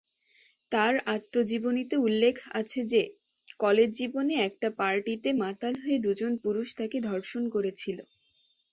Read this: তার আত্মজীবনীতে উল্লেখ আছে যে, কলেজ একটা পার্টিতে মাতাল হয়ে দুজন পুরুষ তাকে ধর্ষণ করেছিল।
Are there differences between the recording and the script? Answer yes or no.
yes